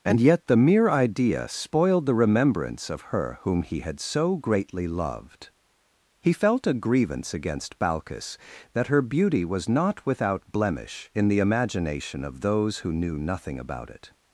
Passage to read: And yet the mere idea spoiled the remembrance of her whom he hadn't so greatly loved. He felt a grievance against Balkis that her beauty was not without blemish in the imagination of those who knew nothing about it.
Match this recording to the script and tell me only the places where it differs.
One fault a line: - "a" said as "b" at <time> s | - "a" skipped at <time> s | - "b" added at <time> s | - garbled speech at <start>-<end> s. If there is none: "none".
- "hadn't" said as "had" at 3.8 s